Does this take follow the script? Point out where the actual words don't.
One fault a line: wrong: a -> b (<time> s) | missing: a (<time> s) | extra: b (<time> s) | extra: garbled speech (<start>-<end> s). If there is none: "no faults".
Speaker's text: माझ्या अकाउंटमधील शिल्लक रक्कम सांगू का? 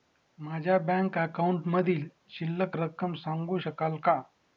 extra: बँक (0.8 s)
extra: शकाल (3.6 s)